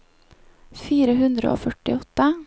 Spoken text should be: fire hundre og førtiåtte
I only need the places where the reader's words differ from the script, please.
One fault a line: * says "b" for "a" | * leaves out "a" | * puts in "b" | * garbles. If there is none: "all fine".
all fine